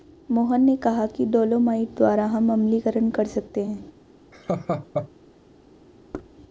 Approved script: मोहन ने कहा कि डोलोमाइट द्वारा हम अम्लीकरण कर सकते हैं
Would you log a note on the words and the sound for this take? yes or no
yes